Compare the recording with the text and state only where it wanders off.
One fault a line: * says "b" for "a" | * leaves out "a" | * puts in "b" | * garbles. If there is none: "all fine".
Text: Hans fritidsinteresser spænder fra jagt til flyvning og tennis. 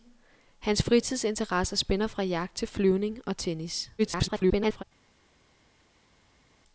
* garbles